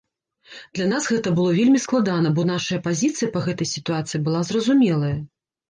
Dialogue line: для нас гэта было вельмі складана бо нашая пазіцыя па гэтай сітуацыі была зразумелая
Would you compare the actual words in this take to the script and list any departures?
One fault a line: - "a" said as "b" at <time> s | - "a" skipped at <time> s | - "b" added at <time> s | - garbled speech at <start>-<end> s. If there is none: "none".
none